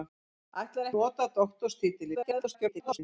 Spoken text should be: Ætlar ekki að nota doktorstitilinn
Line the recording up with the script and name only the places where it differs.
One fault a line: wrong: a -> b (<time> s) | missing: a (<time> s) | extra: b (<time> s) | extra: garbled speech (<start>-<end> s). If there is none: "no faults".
missing: ekki (0.9 s)
extra: garbled speech (2.1-3.0 s)